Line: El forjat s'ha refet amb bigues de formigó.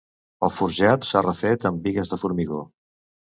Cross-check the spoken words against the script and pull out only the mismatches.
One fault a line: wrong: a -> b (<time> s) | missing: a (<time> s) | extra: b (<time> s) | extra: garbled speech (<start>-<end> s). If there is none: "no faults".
no faults